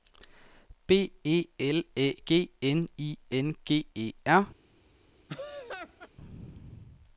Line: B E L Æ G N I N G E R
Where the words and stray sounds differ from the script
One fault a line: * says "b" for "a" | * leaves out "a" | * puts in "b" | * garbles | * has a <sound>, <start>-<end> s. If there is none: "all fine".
* has a laugh, 5.3-6.1 s